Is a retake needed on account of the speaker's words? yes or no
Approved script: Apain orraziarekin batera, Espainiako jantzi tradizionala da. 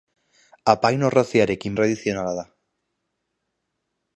yes